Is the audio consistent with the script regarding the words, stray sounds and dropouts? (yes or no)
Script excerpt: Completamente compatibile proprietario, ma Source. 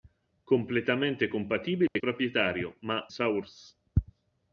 no